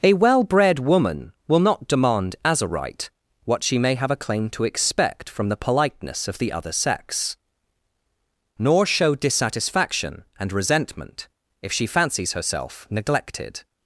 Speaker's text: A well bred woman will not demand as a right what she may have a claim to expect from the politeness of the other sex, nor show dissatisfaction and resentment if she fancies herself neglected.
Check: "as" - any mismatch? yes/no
no